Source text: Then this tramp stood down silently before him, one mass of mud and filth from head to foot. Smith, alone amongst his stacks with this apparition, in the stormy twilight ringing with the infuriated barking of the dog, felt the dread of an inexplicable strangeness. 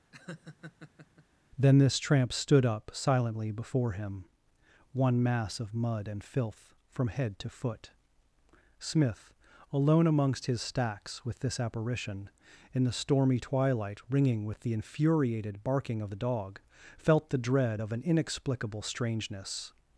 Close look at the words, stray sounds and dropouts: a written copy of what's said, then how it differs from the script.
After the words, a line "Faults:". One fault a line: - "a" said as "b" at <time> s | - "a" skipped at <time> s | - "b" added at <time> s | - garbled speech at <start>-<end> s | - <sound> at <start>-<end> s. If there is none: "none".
Then this tramp stood up silently before him, one mass of mud and filth from head to foot. Smith, alone amongst his stacks with this apparition, in the stormy twilight ringing with the infuriated barking of the dog, felt the dread of an inexplicable strangeness.
Faults:
- laugh at 0.1-1.3 s
- "down" said as "up" at 2.7 s